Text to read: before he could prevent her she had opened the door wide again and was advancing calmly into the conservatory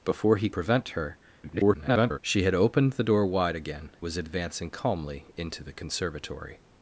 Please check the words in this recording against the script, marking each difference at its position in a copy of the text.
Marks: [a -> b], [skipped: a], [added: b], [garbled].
before he [skipped: could] prevent her [garbled] she had opened the door wide again [skipped: and] was advancing calmly into the conservatory